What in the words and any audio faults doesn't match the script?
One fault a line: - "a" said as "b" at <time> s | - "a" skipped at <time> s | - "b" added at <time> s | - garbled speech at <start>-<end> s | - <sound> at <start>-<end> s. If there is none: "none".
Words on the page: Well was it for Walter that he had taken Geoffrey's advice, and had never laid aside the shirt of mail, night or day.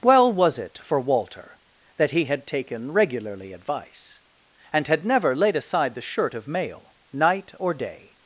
- "Geoffrey's" said as "Regularly" at 2.9 s